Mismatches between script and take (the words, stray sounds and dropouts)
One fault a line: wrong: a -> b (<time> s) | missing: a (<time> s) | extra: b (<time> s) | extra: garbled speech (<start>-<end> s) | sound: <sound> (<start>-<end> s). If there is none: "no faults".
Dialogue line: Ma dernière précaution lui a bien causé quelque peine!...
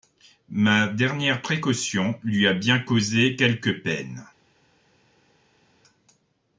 no faults